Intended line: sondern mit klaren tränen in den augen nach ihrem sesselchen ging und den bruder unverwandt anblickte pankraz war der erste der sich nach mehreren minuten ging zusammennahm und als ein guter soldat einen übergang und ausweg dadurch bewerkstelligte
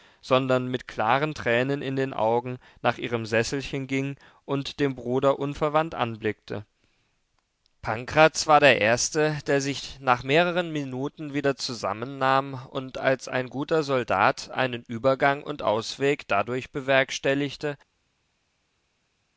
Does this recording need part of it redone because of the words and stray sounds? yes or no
yes